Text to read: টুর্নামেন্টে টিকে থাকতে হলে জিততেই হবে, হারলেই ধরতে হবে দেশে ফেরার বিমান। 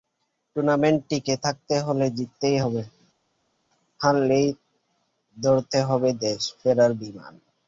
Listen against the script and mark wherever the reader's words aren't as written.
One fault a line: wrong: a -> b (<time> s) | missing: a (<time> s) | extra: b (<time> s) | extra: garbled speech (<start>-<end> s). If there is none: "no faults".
no faults